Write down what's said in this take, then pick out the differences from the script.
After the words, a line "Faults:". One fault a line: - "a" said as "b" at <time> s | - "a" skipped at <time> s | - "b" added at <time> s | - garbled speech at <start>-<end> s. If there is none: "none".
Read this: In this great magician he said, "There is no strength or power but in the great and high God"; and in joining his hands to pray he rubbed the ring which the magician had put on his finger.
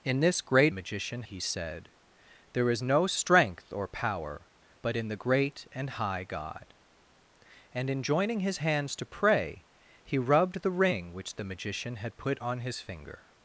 In this great magician he said, "There is no strength or power but in the great and high God"; and in joining his hands to pray he rubbed the ring which the magician had put on his finger.
Faults:
none